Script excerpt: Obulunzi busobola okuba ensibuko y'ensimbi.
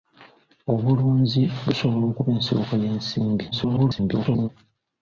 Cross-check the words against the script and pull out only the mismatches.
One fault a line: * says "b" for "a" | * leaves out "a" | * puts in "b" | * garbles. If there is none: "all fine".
* garbles